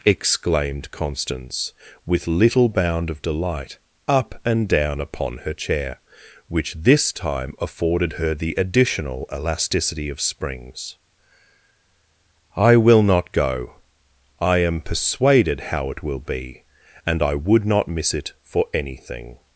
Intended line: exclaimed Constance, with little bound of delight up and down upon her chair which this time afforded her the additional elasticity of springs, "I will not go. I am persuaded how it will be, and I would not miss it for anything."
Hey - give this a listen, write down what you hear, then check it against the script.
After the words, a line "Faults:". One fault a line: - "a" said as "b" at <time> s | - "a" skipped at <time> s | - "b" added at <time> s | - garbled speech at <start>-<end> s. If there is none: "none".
exclaimed Constance, with little bound of delight up and down upon her chair which this time afforded her the additional elasticity of springs, "I will not go. I am persuaded how it will be, and I would not miss it for anything."
Faults:
none